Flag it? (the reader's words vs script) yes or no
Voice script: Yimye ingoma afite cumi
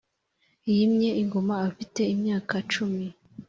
yes